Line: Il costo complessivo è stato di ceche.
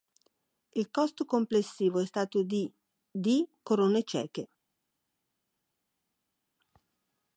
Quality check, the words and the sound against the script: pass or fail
fail